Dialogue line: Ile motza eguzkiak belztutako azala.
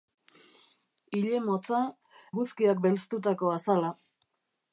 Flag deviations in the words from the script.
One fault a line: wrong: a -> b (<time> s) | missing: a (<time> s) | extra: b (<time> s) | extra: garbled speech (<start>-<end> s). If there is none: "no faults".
no faults